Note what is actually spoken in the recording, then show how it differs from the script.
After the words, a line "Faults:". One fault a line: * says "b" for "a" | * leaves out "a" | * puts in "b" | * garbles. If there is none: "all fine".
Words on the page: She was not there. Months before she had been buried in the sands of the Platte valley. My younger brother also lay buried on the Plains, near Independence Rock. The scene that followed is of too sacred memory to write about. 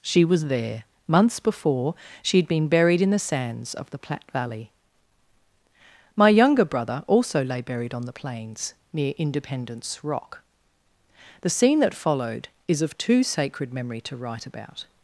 She was there. Months before she had been buried in the sands of the Platte valley. My younger brother also lay buried on the Plains, near Independence Rock. The scene that followed is of too sacred memory to write about.
Faults:
* leaves out "not"